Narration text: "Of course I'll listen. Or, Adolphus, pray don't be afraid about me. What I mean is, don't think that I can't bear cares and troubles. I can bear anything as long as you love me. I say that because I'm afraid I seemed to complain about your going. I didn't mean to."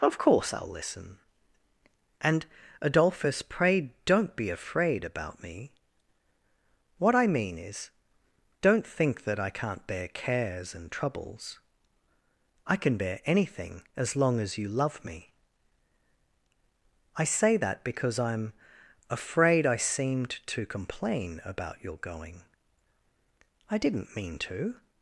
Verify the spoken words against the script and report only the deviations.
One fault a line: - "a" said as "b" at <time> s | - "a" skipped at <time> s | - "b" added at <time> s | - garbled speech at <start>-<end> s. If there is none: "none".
- "Or" said as "And" at 2.2 s